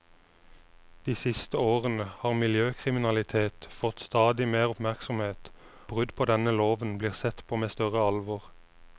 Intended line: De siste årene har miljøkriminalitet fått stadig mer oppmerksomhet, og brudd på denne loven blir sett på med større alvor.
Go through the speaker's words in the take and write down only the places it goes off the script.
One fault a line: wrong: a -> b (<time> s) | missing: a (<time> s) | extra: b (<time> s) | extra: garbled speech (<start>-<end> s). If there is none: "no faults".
missing: og (5.5 s)